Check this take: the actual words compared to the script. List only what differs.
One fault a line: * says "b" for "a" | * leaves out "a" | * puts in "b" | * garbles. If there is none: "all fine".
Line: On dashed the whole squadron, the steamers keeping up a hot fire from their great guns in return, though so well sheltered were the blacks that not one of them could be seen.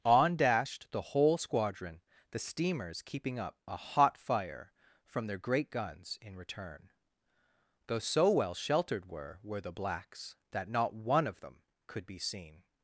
* puts in "were"